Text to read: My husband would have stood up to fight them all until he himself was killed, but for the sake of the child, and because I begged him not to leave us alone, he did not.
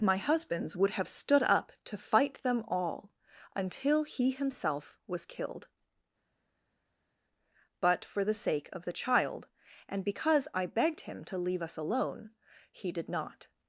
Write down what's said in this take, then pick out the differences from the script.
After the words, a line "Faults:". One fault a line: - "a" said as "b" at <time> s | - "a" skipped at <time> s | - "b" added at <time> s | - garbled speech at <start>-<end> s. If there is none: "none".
My husbands would have stood up to fight them all until he himself was killed, but for the sake of the child, and because I begged him to leave us alone, he did not.
Faults:
- "husband" said as "husbands" at 0.2 s
- "not" skipped at 11.2 s